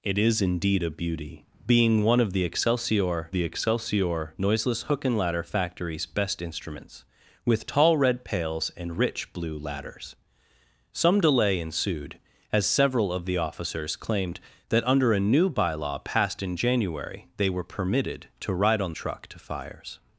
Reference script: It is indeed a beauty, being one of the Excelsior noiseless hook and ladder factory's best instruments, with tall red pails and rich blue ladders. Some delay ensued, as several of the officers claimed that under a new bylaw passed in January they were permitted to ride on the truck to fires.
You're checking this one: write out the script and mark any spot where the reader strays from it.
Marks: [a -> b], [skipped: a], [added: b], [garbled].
It is indeed a beauty, being one of the Excelsior [added: the Excelsior] noiseless hook and ladder factory's best instruments, with tall red pails and rich blue ladders. Some delay ensued, as several of the officers claimed that under a new bylaw passed in January they were permitted to ride on [skipped: the] truck to fires.